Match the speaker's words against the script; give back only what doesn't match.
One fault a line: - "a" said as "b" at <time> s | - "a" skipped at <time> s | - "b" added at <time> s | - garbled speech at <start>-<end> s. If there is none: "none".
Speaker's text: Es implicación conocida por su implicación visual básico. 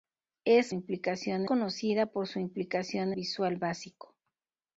none